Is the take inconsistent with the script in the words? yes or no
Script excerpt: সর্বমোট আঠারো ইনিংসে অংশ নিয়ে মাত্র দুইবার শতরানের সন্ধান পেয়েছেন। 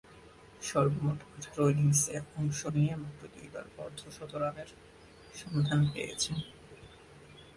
yes